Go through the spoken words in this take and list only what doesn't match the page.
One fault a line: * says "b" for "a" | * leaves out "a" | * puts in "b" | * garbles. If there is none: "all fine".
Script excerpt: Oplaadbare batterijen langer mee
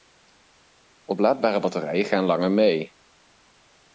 * puts in "gaan"